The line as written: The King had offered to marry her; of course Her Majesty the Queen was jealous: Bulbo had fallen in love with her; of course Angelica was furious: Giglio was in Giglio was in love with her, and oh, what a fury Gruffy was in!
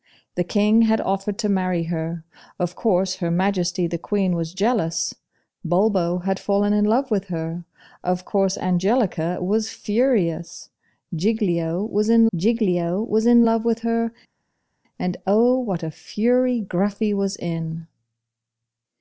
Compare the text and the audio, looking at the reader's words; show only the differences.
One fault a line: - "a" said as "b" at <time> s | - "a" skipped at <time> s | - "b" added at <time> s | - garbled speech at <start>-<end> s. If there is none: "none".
none